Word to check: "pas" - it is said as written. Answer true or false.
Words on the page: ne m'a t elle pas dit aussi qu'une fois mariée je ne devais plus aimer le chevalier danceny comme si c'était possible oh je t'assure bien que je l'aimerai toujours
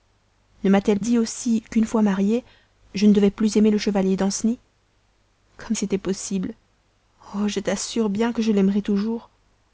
false